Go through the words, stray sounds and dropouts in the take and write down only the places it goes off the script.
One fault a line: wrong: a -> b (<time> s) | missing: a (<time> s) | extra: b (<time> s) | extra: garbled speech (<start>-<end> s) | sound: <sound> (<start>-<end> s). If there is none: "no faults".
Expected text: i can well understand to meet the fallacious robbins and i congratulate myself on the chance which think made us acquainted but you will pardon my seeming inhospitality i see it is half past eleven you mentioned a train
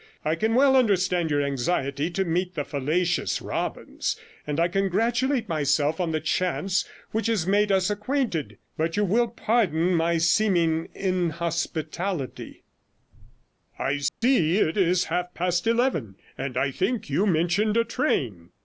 extra: your anxiety (1.3 s)
wrong: think -> has (7.3 s)
sound: dropout (14.1-14.2 s)
extra: and i think (16.4 s)